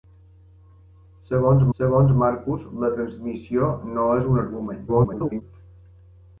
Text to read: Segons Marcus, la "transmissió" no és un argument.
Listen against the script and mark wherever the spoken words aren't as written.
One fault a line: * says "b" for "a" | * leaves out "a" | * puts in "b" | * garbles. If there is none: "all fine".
* puts in "segons"
* garbles